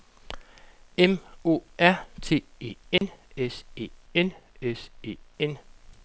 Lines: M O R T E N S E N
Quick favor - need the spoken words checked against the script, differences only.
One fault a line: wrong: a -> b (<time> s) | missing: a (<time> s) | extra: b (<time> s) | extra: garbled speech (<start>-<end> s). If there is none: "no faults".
extra: S E N (4.6 s)